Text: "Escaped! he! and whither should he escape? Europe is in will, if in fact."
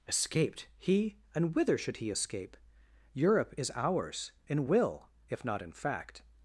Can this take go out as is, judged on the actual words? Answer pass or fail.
fail